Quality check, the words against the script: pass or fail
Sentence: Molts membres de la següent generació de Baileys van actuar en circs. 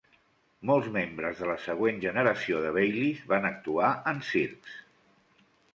pass